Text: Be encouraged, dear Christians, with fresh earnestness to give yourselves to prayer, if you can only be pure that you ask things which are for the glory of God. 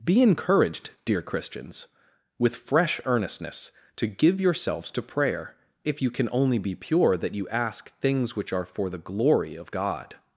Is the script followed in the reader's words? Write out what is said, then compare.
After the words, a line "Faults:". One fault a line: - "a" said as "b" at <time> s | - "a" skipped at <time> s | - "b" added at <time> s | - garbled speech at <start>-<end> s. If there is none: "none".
Be encouraged, dear Christians, with fresh earnestness to give yourselves to prayer, if you can only be pure that you ask things which are for the glory of God.
Faults:
none